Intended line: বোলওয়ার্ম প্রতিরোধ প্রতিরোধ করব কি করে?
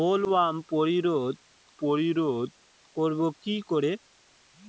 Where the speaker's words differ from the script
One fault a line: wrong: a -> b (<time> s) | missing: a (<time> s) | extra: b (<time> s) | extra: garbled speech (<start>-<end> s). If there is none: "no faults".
no faults